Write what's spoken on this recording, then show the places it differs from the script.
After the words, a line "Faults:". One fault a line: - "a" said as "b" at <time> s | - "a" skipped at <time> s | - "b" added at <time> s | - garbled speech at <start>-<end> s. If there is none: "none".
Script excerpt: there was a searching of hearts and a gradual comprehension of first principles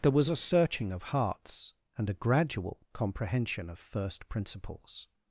there was a searching of hearts and a gradual comprehension of first principles
Faults:
none